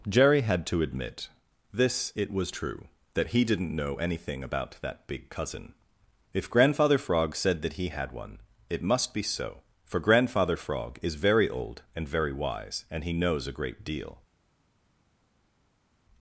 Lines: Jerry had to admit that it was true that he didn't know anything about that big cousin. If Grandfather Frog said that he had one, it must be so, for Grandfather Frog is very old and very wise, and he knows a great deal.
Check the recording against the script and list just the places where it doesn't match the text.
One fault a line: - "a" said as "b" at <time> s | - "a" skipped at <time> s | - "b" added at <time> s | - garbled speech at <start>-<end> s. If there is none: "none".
- "that" said as "this" at 1.7 s